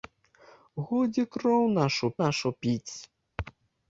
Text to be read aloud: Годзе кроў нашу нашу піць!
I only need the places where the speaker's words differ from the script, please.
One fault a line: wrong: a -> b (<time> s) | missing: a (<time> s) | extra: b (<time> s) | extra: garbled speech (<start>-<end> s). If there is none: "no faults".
no faults